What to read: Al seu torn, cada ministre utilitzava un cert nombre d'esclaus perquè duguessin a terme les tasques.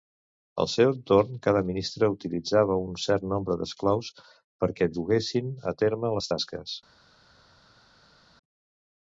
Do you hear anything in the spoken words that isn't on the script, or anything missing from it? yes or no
no